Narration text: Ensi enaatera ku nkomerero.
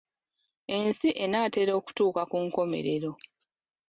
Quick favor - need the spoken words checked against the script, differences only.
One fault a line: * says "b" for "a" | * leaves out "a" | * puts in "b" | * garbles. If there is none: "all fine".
* puts in "okutuuka"